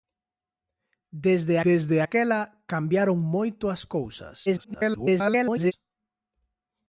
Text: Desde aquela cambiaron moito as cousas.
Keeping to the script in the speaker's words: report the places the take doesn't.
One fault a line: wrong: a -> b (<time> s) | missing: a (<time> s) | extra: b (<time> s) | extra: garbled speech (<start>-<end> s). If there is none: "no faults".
extra: desde (1.7 s)
extra: garbled speech (4.5-5.7 s)